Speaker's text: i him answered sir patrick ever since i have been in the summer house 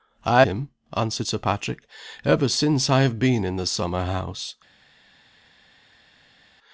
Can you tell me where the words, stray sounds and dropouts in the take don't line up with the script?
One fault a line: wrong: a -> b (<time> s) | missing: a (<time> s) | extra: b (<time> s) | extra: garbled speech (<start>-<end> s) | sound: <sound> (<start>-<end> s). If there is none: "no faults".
no faults